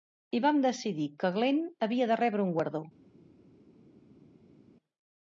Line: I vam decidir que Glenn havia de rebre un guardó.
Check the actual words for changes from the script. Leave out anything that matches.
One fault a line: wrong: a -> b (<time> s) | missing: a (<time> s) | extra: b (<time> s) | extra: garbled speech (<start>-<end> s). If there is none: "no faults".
no faults